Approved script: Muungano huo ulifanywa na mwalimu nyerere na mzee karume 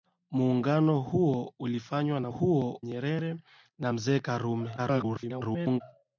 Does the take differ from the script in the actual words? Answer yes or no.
yes